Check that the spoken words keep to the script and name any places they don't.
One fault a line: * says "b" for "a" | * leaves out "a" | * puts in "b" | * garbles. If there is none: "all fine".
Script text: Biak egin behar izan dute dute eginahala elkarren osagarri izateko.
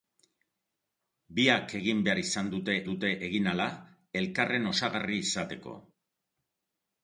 all fine